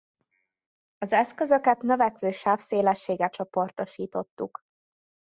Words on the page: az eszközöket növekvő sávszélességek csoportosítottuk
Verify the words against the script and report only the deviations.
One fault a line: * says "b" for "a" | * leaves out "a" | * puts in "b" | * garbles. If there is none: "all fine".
all fine